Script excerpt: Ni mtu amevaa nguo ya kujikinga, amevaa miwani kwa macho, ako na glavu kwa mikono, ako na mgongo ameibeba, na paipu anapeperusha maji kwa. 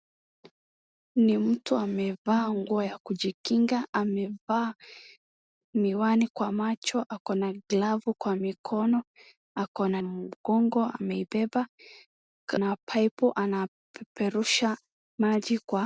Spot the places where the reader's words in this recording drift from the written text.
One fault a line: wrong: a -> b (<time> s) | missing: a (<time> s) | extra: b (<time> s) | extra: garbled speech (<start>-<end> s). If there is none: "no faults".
no faults